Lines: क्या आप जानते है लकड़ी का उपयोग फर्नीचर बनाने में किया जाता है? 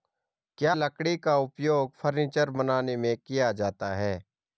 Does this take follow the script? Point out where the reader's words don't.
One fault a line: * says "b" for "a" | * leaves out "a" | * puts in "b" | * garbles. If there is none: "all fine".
* leaves out "आप जानते है"